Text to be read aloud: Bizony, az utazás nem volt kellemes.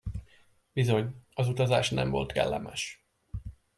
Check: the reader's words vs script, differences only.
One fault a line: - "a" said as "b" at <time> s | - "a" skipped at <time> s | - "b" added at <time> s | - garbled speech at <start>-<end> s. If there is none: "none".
none